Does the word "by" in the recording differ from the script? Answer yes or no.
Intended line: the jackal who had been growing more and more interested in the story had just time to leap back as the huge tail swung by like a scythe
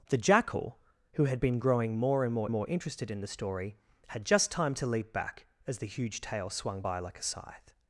no